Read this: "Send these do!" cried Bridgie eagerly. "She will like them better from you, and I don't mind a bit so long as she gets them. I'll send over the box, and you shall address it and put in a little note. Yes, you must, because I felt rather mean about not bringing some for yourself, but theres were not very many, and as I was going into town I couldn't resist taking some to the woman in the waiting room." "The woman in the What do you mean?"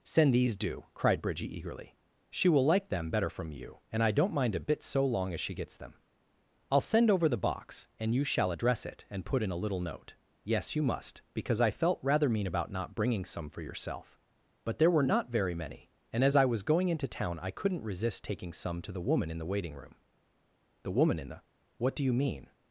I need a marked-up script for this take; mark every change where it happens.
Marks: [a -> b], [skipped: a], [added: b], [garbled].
"Send these do!" cried Bridgie eagerly. "She will like them better from you, and I don't mind a bit so long as she gets them. I'll send over the box, and you shall address it and put in a little note. Yes, you must, because I felt rather mean about not bringing some for yourself, but [theres -> there] were not very many, and as I was going into town I couldn't resist taking some to the woman in the waiting room." "The woman in the What do you mean?"